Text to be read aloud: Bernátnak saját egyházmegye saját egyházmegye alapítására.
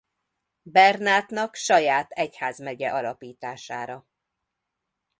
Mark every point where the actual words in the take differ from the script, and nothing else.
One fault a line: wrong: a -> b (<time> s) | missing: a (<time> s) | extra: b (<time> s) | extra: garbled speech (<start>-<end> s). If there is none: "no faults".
missing: saját egyházmegye (2.9 s)